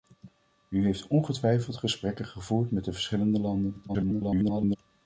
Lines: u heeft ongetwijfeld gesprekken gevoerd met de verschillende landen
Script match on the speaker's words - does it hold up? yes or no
no